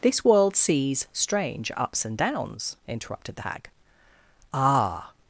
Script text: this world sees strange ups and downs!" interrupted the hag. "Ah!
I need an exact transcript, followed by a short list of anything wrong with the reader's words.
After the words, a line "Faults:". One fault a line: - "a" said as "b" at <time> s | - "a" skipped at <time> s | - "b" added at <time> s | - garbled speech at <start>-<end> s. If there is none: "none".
this world sees strange ups and downs!" interrupted the hag. "Ah!
Faults:
none